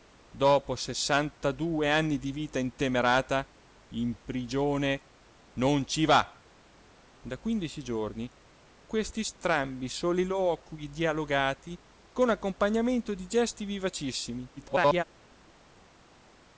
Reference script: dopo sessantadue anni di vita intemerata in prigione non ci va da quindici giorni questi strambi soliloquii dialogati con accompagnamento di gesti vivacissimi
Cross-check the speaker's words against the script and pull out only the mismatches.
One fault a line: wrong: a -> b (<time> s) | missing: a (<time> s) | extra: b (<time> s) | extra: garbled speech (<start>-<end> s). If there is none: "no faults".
extra: garbled speech (14.6-15.0 s)